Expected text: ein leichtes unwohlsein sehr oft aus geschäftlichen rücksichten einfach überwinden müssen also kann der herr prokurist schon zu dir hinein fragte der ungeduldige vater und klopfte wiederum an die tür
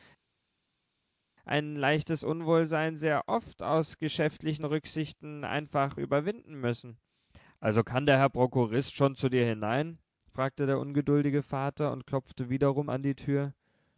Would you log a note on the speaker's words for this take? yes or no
no